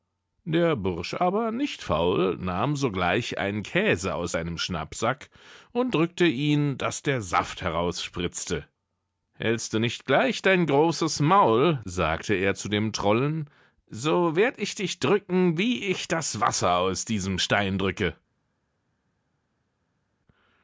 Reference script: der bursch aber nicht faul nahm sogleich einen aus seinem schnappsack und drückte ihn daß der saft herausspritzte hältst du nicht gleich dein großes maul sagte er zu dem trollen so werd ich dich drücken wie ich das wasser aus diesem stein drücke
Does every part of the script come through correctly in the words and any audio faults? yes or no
no